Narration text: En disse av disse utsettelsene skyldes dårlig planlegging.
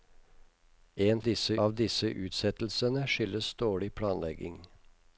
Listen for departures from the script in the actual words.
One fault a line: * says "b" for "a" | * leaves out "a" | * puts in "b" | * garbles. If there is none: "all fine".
all fine